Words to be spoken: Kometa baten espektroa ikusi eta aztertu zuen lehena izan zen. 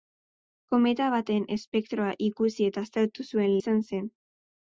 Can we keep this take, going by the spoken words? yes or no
no